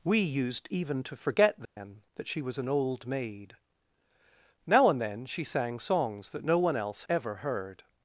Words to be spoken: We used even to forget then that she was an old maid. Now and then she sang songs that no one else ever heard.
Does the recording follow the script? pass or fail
pass